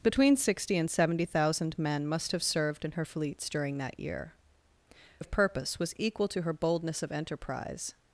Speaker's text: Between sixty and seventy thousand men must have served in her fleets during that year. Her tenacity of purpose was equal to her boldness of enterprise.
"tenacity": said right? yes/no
no